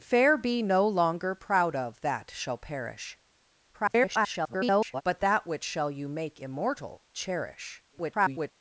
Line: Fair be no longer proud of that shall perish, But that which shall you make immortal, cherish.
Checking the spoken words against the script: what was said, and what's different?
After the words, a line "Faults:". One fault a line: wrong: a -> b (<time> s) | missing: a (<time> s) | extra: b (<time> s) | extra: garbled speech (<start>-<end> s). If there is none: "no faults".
Fair be no longer proud of that shall perish, [garbled] But that which shall you make immortal, cherish. [garbled]
Faults:
extra: garbled speech (3.7-5.0 s)
extra: garbled speech (7.9-8.5 s)